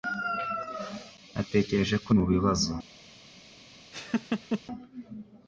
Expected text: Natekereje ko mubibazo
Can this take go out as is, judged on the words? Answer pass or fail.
pass